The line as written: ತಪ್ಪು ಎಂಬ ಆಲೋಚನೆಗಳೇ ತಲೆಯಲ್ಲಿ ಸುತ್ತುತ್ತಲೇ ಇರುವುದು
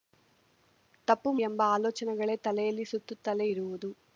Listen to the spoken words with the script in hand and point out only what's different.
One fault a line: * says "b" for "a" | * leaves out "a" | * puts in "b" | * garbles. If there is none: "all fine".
all fine